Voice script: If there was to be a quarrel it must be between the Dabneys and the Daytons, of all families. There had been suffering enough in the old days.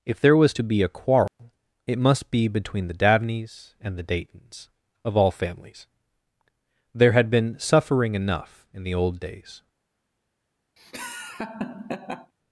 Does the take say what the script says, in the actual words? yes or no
yes